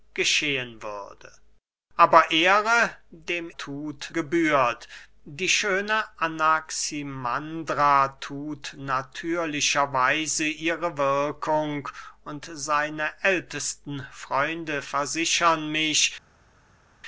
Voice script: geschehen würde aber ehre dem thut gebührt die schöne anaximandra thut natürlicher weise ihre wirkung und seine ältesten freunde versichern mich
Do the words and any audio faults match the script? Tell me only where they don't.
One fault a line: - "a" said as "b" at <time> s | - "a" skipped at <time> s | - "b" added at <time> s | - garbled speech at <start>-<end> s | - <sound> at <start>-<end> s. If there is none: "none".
none